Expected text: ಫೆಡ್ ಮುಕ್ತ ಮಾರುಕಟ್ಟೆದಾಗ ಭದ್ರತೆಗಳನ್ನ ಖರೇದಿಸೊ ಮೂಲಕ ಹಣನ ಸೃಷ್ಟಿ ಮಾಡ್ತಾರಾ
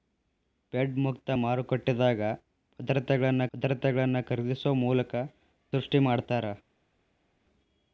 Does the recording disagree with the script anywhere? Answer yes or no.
yes